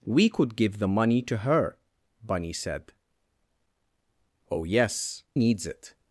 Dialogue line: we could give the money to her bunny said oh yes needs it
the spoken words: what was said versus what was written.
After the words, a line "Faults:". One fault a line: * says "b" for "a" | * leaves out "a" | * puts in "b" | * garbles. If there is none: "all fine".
we could give the money to her bunny said oh yes needs it
Faults:
all fine